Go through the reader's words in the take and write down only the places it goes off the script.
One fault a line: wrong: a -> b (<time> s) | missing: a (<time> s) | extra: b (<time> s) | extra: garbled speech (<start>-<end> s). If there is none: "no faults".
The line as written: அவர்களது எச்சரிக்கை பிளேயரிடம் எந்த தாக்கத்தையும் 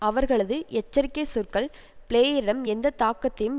extra: சொற்கள் (1.2 s)